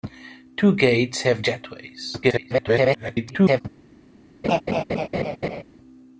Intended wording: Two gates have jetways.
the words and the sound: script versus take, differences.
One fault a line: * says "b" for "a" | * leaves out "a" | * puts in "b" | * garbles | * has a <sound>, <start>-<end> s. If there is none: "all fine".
* garbles
* has a laugh, 4.4-5.6 s